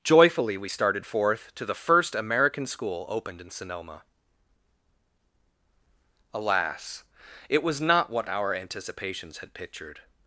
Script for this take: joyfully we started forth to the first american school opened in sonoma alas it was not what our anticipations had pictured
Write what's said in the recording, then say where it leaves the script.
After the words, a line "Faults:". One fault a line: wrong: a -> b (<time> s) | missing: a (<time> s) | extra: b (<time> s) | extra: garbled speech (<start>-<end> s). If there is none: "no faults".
joyfully we started forth to the first american school opened in sonoma alas it was not what our anticipations had pictured
Faults:
no faults